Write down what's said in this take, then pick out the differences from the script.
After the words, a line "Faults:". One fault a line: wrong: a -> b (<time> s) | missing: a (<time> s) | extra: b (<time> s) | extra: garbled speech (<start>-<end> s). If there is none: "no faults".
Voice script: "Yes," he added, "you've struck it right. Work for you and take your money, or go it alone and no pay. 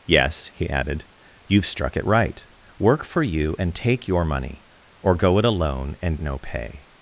"Yes," he added, "you've struck it right. Work for you and take your money, or go it alone and no pay.
Faults:
no faults